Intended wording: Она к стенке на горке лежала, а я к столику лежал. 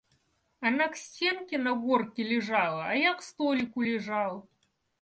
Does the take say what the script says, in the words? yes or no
yes